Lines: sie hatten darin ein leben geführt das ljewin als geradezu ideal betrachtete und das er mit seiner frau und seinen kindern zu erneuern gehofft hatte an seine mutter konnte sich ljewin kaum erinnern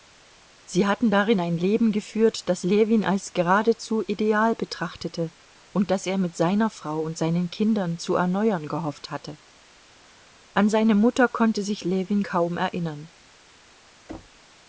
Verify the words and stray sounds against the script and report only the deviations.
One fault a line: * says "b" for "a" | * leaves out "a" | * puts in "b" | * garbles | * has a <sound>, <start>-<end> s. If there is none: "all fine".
* has a thud, 14.1-14.5 s